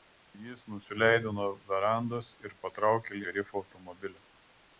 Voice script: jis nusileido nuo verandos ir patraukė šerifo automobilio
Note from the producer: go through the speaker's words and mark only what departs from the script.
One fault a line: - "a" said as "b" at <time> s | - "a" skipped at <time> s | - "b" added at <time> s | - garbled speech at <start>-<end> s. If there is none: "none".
none